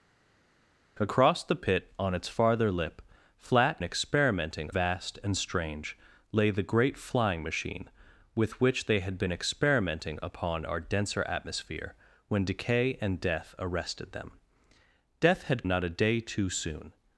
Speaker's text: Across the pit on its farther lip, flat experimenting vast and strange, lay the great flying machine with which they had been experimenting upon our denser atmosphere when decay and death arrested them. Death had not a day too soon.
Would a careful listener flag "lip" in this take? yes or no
no